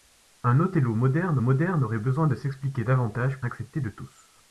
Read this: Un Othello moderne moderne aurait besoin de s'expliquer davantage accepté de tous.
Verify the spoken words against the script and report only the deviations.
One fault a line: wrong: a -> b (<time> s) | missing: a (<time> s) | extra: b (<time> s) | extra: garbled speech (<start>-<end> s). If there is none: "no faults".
no faults